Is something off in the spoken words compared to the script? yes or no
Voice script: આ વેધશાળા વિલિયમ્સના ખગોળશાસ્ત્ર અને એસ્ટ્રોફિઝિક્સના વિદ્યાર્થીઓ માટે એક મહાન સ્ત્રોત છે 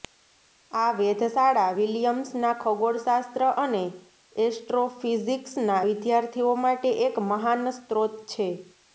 no